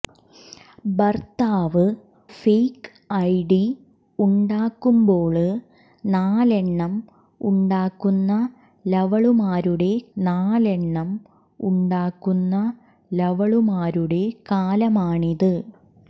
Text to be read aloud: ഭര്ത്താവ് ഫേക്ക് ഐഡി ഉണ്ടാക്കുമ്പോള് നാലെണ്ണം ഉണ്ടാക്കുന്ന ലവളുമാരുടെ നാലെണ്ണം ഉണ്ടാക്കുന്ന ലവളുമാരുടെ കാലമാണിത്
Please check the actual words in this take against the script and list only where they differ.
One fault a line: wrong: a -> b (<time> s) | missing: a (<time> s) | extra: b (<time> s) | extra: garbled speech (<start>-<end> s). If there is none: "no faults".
no faults